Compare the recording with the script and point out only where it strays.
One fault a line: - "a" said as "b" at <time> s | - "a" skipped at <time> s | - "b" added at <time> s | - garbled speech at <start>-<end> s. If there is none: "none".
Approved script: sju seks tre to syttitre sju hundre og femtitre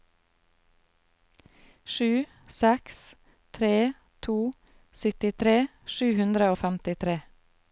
none